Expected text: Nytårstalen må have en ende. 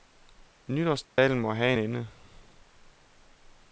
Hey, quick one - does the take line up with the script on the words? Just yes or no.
no